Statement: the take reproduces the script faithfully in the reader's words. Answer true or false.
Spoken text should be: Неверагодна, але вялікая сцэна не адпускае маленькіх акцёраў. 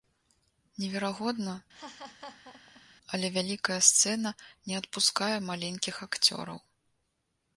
true